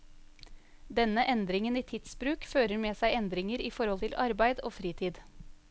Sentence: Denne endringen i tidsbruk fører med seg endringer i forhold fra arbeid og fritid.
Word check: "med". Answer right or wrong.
right